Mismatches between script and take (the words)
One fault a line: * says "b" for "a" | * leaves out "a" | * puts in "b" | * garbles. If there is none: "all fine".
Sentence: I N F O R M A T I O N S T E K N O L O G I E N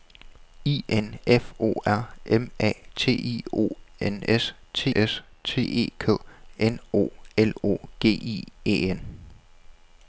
* puts in "S T"